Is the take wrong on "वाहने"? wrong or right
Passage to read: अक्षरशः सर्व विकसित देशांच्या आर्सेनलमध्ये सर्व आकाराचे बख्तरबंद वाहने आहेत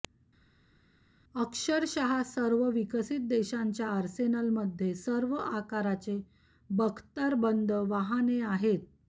right